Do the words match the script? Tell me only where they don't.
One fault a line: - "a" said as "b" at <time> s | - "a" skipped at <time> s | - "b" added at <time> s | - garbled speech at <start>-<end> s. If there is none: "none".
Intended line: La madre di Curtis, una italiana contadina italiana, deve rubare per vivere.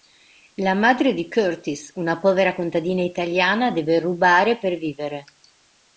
- "italiana" said as "povera" at 2.2 s